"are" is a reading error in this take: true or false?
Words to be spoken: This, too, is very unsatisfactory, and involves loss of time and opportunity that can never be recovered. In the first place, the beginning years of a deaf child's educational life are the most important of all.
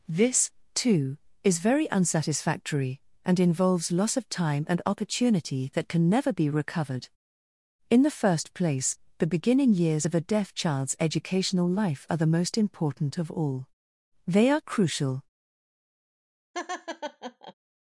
false